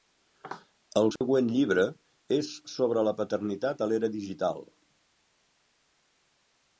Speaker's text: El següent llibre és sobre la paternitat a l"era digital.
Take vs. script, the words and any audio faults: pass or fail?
fail